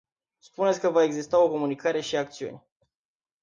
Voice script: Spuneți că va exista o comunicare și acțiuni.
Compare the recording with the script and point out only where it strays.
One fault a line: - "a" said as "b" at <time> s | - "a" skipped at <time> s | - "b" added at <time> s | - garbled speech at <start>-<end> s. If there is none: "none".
none